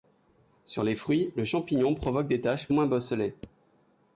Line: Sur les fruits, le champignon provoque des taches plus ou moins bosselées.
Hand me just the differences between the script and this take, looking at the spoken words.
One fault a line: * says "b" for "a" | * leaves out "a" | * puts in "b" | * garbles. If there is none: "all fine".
* leaves out "plus"